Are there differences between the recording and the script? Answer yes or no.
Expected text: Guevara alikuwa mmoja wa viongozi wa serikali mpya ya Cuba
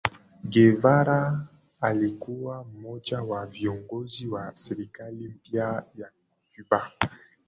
no